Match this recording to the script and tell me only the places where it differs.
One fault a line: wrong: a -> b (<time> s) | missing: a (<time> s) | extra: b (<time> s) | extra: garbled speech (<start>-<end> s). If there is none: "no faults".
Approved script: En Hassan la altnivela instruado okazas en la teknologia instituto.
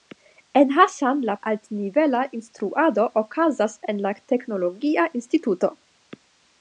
no faults